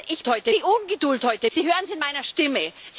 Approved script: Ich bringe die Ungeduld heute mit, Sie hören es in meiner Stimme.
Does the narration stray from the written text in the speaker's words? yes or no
yes